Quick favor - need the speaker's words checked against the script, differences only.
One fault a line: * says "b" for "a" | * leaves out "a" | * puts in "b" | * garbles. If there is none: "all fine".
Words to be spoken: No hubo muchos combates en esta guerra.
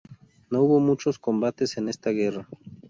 all fine